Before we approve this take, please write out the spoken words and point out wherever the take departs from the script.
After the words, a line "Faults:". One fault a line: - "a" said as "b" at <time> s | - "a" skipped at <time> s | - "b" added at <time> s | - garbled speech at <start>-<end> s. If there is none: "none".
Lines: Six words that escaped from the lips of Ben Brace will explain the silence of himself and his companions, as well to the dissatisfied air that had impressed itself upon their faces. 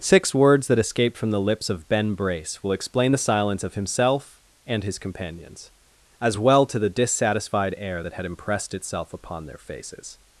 Six words that escaped from the lips of Ben Brace will explain the silence of himself and his companions, as well to the dissatisfied air that had impressed itself upon their faces.
Faults:
none